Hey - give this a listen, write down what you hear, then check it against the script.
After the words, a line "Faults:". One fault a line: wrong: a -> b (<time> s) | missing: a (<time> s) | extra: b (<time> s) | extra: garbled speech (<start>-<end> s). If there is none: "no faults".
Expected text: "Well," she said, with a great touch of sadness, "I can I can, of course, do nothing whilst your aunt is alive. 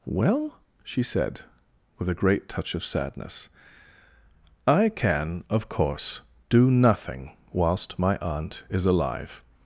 "Well," she said, with a great touch of sadness, "I can, of course, do nothing whilst my aunt is alive.
Faults:
missing: I can (5.4 s)
wrong: your -> my (8.0 s)